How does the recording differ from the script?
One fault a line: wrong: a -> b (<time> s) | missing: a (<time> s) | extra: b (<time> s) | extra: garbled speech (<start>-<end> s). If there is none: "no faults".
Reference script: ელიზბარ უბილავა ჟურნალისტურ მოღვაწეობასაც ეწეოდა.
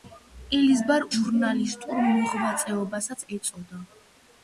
missing: უბილავა (1.1 s)